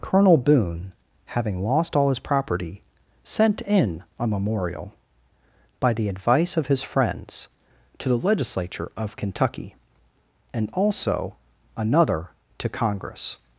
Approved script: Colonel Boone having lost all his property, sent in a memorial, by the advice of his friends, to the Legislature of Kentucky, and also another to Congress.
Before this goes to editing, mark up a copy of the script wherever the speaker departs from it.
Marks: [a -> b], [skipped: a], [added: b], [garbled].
Colonel Boone having lost all his property, sent in a memorial, by the advice of his friends, to the Legislature of Kentucky, and also another to Congress.